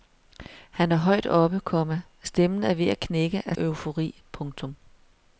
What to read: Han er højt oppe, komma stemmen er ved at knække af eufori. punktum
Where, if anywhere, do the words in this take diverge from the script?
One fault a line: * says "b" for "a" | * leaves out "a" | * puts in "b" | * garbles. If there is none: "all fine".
all fine